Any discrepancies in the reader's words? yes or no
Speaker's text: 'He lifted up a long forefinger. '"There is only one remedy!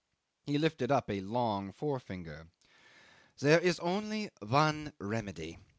no